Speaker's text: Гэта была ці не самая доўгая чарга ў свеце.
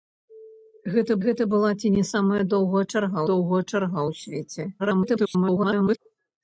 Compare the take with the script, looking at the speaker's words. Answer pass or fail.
fail